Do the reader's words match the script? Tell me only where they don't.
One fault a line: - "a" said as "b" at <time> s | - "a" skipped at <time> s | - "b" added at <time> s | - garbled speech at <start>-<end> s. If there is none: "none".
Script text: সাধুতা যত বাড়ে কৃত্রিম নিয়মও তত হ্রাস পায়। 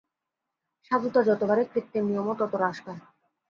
none